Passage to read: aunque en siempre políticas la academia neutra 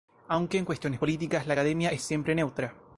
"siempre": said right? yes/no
no